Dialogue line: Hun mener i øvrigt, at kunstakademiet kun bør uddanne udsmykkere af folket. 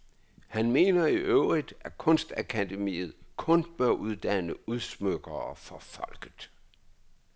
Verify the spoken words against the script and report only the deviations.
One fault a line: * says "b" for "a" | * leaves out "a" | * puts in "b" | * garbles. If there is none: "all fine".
* says "Han" for "Hun"
* says "for" for "af"